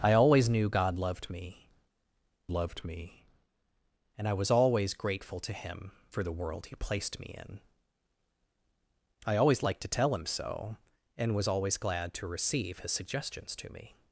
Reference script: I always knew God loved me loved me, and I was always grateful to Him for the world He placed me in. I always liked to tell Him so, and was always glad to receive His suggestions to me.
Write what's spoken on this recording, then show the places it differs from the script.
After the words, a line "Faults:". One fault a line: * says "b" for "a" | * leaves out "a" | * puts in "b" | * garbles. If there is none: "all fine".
I always knew God loved me loved me, and I was always grateful to Him for the world He placed me in. I always liked to tell Him so, and was always glad to receive His suggestions to me.
Faults:
all fine